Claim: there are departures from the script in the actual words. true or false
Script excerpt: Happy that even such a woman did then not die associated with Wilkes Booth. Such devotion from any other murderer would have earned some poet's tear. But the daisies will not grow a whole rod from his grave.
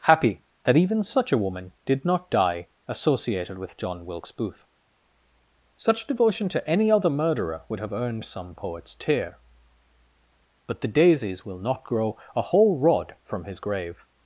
true